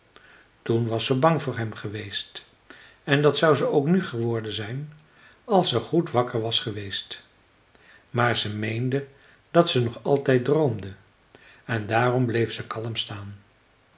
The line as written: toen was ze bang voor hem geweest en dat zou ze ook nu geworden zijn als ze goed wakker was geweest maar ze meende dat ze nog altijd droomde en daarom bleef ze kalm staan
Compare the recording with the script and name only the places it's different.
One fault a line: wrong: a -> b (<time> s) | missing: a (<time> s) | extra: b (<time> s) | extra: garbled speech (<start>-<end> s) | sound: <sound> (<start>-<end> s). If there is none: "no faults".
no faults